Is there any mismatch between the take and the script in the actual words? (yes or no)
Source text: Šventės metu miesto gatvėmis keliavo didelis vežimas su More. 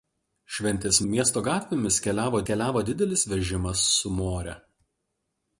yes